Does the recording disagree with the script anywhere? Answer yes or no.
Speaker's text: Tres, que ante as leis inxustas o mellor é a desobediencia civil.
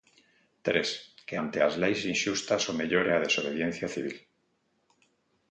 no